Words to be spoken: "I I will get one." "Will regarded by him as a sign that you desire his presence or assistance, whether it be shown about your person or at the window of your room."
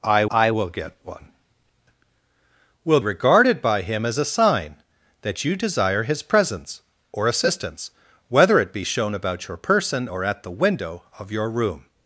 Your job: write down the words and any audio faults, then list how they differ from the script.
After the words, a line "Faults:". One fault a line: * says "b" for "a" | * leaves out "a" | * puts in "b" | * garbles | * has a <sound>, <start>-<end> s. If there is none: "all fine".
"I I will get one." "Will regarded by him as a sign that you desire his presence or assistance, whether it be shown about your person or at the window of your room."
Faults:
all fine